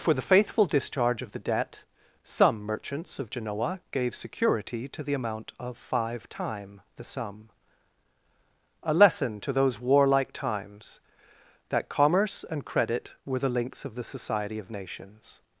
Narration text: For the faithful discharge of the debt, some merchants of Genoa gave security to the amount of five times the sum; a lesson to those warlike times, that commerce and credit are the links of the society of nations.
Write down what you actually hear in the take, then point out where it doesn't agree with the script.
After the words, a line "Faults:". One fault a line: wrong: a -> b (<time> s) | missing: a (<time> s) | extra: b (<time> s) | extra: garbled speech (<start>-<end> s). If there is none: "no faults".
For the faithful discharge of the debt, some merchants of Genoa gave security to the amount of five time the sum; a lesson to those warlike times, that commerce and credit were the links of the society of nations.
Faults:
wrong: times -> time (6.3 s)
wrong: are -> were (13.3 s)